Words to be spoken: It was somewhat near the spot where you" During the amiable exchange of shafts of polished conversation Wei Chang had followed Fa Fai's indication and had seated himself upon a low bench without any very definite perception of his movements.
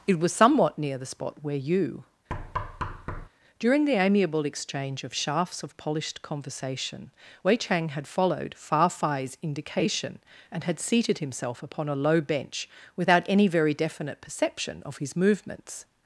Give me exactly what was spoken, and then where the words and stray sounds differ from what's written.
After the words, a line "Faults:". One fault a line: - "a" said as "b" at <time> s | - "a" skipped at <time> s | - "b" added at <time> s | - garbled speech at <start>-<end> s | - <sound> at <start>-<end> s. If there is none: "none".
It was somewhat near the spot where you" During the amiable exchange of shafts of polished conversation Wei Chang had followed Fa Fai's indication and had seated himself upon a low bench without any very definite perception of his movements.
Faults:
- thud at 2.3-3.3 s